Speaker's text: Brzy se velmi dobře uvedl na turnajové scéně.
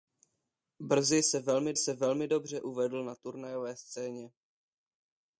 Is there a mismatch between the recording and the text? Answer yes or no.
yes